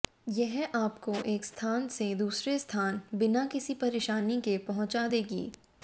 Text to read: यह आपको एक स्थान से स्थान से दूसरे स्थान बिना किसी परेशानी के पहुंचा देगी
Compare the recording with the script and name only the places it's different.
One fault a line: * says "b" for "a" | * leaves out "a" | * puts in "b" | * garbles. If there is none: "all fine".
* leaves out "स्थान से"